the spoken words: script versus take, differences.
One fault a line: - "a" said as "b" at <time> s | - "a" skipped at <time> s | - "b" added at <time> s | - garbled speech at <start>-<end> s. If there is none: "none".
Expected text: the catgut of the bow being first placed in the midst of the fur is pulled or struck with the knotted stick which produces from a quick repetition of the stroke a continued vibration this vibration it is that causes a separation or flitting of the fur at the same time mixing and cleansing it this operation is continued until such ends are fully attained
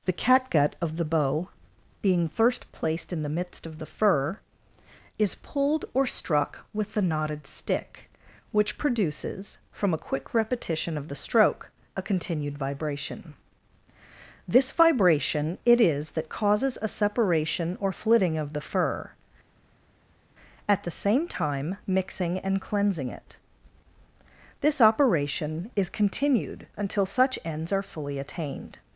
none